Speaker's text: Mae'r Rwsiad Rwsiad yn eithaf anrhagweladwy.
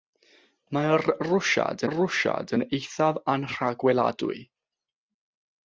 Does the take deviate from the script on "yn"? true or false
false